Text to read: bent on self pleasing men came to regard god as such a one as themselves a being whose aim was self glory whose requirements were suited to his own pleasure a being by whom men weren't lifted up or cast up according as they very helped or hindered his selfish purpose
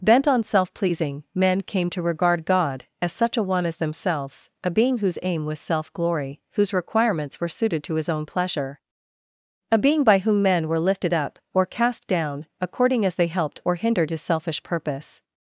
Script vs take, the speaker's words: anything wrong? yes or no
yes